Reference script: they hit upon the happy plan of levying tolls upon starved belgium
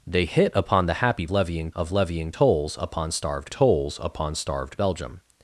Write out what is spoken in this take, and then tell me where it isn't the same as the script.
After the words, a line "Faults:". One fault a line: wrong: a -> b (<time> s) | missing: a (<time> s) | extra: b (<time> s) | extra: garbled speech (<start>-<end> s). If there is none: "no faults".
they hit upon the happy levying of levying tolls upon starved tolls upon starved belgium
Faults:
wrong: plan -> levying (1.3 s)
extra: tolls upon starved (3.5 s)